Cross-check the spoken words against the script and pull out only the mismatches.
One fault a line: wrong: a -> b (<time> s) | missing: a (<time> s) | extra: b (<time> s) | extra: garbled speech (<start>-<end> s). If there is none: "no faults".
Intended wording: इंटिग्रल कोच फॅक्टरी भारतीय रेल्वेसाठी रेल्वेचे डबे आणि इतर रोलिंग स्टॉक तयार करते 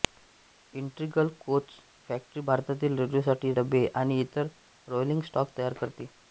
missing: रेल्वेचे (3.5 s)